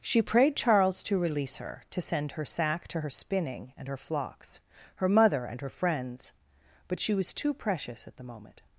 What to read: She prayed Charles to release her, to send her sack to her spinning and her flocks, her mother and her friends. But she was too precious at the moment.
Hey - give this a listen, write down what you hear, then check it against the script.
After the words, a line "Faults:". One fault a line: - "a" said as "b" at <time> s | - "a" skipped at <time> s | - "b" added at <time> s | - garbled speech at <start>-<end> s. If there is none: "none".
She prayed Charles to release her, to send her sack to her spinning and her flocks, her mother and her friends. But she was too precious at the moment.
Faults:
none